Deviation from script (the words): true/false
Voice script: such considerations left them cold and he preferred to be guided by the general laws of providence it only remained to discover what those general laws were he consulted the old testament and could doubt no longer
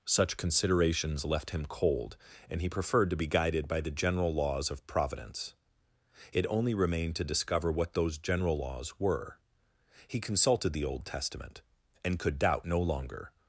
true